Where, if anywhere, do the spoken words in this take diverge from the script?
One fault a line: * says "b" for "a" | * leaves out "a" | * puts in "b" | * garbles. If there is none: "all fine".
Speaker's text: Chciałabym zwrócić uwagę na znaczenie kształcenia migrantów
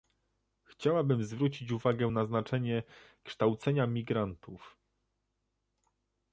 all fine